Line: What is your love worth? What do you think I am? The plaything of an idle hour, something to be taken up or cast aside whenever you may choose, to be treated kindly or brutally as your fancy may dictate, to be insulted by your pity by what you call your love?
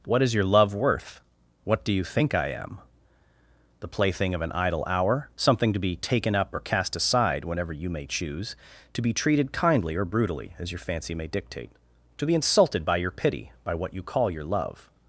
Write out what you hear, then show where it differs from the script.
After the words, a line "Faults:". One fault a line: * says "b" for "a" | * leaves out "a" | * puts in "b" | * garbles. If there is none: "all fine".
What is your love worth? What do you think I am? The plaything of an idle hour, something to be taken up or cast aside whenever you may choose, to be treated kindly or brutally as your fancy may dictate, to be insulted by your pity by what you call your love?
Faults:
all fine